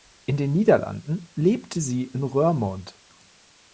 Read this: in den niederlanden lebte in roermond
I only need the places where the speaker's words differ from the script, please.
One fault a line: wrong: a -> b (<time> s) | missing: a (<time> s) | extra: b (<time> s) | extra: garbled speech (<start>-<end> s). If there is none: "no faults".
extra: sie (1.8 s)